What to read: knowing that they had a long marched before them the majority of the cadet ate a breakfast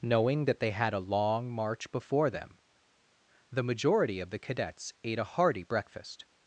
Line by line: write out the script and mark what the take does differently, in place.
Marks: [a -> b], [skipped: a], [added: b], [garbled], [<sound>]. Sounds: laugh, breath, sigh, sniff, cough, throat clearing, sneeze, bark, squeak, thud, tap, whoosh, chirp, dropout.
knowing that they had a long [marched -> march] before them the majority of the [cadet -> cadets] ate a [added: hearty] breakfast